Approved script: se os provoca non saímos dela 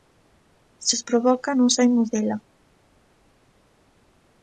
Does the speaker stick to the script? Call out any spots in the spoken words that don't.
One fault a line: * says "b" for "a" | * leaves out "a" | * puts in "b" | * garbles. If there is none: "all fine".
all fine